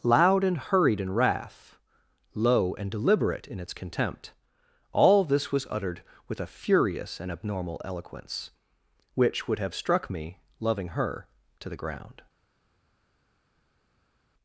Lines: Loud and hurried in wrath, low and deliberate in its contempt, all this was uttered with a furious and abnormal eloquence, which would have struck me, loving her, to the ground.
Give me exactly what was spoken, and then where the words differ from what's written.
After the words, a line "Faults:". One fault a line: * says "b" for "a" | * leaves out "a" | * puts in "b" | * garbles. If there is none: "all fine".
Loud and hurried in wrath, low and deliberate in its contempt, all this was uttered with a furious and abnormal eloquence, which would have struck me, loving her, to the ground.
Faults:
all fine